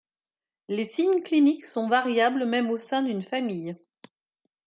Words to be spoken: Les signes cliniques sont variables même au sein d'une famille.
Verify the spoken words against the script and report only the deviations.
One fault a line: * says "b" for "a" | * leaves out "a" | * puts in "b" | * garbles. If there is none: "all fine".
all fine